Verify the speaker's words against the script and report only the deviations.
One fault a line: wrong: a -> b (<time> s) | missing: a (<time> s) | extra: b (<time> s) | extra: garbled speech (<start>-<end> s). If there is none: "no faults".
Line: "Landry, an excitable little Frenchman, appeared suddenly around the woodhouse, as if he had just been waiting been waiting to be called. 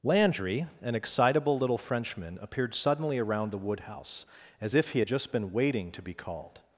missing: been waiting (5.9 s)